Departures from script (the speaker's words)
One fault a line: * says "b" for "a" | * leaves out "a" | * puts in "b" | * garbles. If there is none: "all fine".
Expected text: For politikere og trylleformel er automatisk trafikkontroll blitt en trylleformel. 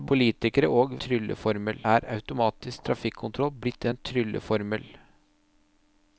all fine